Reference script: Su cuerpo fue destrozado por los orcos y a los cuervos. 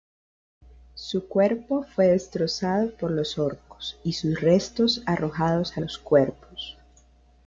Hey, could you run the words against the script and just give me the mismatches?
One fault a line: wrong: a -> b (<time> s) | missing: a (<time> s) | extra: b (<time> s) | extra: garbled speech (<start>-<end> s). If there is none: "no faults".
extra: sus restos arrojados (4.1 s)